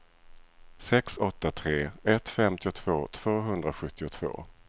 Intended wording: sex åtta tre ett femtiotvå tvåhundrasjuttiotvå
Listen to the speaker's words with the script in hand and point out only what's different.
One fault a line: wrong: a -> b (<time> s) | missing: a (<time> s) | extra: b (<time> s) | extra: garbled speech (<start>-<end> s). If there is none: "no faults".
no faults